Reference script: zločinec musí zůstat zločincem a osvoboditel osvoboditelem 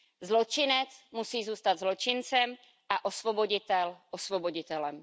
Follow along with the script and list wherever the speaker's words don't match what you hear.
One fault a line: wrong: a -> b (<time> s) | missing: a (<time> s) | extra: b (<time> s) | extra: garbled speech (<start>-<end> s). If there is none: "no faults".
no faults